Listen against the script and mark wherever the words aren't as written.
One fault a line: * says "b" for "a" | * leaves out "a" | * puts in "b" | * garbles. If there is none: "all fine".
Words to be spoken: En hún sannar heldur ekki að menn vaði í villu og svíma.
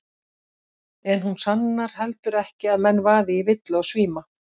all fine